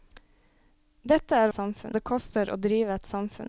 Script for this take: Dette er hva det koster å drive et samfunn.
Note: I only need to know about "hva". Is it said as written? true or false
false